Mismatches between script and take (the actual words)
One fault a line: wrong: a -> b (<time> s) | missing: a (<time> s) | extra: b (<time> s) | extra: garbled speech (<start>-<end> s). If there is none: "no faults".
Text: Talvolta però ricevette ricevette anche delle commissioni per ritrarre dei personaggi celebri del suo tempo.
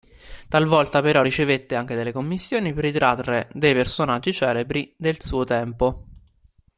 missing: ricevette (1.7 s)